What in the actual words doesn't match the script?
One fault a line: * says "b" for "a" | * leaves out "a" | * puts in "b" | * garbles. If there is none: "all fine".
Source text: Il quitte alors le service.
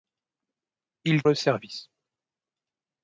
* leaves out "quitte alors"